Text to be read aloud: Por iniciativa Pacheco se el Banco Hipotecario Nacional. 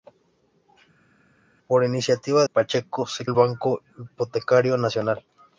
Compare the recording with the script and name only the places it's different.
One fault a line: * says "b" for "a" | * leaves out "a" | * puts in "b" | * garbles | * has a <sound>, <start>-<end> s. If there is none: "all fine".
all fine